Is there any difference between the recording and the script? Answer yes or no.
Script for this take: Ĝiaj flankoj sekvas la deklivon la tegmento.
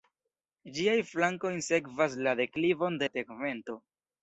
no